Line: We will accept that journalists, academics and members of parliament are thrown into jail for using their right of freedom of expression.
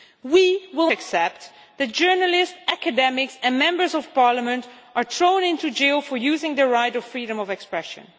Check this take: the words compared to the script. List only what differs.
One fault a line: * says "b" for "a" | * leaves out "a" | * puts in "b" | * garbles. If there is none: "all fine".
all fine